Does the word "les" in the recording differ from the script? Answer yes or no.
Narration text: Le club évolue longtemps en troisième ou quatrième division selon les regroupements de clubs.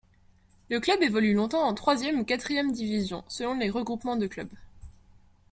no